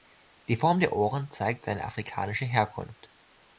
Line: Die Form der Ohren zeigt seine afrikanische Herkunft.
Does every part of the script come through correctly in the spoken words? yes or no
yes